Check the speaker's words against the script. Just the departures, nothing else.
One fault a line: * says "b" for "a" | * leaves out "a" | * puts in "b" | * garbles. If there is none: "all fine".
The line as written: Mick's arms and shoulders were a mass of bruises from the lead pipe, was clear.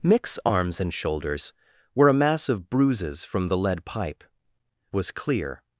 all fine